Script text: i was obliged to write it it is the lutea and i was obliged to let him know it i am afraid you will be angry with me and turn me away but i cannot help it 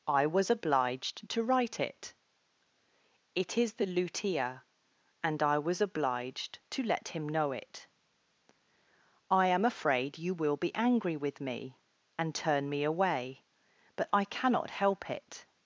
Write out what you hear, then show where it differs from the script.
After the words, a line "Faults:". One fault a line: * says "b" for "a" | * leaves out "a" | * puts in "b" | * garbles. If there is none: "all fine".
i was obliged to write it it is the lutea and i was obliged to let him know it i am afraid you will be angry with me and turn me away but i cannot help it
Faults:
all fine